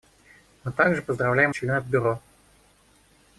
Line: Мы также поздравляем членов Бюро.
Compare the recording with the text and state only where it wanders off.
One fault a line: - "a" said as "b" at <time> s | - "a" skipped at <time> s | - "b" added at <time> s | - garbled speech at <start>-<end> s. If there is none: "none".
none